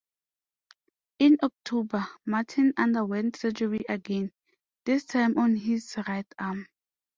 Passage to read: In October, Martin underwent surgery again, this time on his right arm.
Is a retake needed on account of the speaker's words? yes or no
no